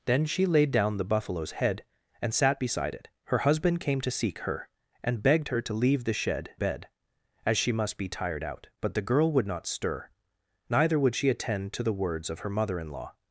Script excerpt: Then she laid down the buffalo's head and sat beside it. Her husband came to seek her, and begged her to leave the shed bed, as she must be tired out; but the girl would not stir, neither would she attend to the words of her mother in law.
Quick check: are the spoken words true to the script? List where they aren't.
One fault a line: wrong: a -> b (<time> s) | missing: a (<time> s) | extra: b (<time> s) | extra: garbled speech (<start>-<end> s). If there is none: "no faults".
no faults